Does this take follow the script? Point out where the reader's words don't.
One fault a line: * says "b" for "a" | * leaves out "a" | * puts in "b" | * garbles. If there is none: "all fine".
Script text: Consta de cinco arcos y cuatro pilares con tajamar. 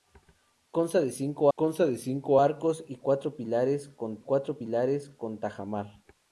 * puts in "consta de cinco"
* puts in "cuatro pilares con"